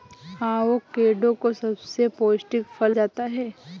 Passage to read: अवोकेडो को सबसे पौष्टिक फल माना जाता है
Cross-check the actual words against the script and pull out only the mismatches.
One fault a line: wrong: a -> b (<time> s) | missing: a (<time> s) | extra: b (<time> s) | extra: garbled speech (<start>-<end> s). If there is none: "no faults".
missing: माना (3.0 s)